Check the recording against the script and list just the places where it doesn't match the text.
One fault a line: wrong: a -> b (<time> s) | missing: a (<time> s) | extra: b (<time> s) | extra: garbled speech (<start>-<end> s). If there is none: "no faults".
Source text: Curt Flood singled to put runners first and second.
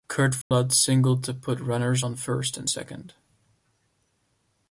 extra: on (2.0 s)